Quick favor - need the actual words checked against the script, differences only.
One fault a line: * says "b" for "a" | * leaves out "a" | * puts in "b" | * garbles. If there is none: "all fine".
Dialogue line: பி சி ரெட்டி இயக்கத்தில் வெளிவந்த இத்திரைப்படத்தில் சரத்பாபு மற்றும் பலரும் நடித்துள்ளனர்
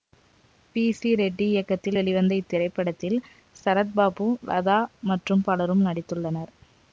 * puts in "லதா"